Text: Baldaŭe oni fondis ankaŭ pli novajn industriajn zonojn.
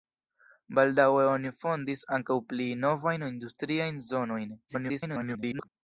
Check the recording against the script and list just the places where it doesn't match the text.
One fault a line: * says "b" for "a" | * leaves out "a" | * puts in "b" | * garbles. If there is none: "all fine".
* garbles